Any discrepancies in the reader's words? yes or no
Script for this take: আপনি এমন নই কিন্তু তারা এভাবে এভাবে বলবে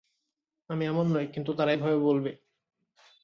yes